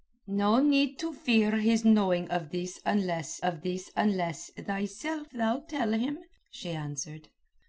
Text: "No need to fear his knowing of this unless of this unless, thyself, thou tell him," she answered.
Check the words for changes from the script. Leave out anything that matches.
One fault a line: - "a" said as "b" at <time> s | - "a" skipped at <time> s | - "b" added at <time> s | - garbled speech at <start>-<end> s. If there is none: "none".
none